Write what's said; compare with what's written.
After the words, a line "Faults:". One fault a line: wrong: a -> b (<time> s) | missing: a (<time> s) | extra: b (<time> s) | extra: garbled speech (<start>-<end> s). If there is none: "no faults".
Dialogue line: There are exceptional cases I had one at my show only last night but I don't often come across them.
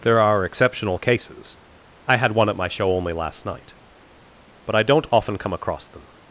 There are exceptional cases I had one at my show only last night but I don't often come across them.
Faults:
no faults